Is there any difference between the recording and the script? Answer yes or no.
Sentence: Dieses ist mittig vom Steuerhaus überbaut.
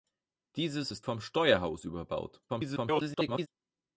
yes